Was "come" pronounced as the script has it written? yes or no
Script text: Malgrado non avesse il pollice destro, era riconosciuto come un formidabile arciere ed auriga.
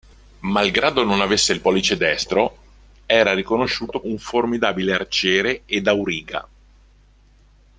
no